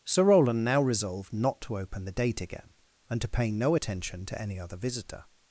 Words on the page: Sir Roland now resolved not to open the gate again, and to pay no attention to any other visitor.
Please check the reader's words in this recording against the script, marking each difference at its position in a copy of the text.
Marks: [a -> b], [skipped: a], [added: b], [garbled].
Sir Roland now resolved not to open the [gate -> date] again, and to pay no attention to any other visitor.